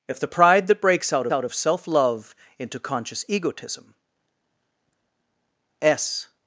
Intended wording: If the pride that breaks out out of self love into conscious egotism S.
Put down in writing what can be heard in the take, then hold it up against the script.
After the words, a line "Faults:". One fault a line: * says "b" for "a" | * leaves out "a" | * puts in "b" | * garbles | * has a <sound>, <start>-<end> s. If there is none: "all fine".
If the pride that breaks out out of self love into conscious egotism S.
Faults:
all fine